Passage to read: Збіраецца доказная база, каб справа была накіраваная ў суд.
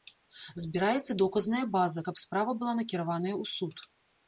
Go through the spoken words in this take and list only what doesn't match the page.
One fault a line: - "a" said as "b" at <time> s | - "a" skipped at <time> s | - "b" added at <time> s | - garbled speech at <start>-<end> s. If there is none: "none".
none